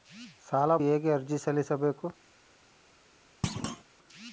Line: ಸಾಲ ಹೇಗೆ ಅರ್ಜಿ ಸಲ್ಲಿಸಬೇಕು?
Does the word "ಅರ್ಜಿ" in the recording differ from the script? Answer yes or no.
no